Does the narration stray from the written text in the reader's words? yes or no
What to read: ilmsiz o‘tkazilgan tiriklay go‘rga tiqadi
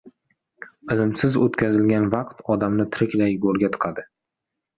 yes